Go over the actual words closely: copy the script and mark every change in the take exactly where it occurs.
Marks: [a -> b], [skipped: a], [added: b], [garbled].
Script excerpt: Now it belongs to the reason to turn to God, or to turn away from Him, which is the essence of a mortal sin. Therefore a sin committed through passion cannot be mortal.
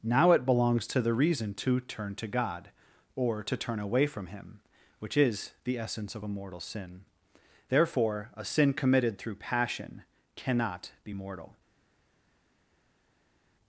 Now it belongs to the reason to turn to God, or to turn away from Him, which is the essence of a mortal sin. Therefore a sin committed through passion cannot be mortal.